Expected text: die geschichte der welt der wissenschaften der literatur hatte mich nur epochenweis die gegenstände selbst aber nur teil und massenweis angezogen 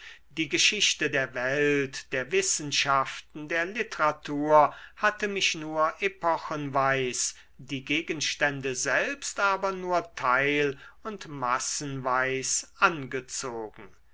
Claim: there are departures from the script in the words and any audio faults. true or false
false